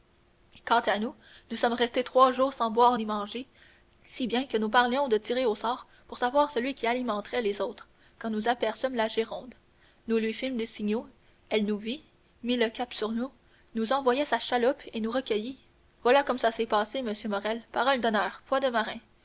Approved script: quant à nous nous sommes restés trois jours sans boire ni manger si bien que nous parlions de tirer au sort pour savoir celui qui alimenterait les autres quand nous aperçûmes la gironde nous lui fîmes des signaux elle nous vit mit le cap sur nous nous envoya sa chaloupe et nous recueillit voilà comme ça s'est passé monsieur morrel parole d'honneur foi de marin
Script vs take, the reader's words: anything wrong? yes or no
no